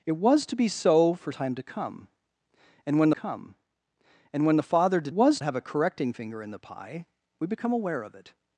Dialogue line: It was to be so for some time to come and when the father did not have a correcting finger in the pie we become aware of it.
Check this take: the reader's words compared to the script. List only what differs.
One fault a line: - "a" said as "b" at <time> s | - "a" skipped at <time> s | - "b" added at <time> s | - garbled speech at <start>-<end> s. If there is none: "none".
- "some" skipped at 1.3 s
- "come and when" added at 3.1 s
- "not" said as "was" at 5.1 s